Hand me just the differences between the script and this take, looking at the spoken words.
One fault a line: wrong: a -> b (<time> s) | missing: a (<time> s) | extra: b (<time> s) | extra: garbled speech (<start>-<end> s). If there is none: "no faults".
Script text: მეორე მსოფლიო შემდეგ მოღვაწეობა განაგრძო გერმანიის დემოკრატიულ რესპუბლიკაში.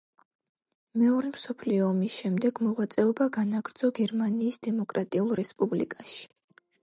extra: ომის (1.9 s)